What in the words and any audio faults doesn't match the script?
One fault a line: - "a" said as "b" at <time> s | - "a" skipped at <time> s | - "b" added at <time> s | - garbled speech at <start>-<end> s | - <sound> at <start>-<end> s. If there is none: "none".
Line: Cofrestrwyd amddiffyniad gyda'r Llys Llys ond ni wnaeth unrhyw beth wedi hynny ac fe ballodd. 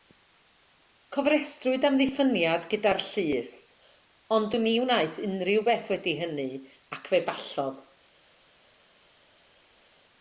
- "Llys" skipped at 3.5 s